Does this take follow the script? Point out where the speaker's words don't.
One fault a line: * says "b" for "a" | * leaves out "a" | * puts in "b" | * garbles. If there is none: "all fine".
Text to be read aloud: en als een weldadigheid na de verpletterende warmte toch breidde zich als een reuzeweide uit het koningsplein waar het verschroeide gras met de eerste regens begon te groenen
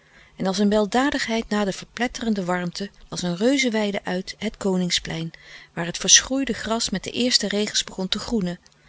* leaves out "toch breidde zich"